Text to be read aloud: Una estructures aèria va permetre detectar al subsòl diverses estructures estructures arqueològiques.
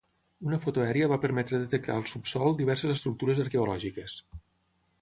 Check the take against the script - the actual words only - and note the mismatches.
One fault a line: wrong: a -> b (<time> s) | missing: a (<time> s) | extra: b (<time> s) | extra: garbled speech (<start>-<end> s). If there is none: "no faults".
wrong: estructures -> foto (0.6 s)
missing: estructures (3.4 s)